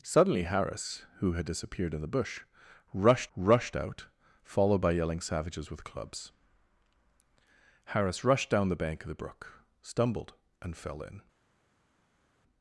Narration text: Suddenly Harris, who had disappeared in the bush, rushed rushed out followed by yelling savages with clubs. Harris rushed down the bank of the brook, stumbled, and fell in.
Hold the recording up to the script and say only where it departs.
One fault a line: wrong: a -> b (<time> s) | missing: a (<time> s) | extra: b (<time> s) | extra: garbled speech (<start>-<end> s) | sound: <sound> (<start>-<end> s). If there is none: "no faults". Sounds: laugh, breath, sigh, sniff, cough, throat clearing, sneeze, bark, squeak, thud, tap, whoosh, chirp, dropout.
no faults